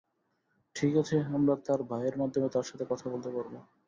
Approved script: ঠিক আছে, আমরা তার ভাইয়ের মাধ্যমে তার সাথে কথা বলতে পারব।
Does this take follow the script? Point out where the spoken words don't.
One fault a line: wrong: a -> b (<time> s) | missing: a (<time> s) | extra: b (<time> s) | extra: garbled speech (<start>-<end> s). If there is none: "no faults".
no faults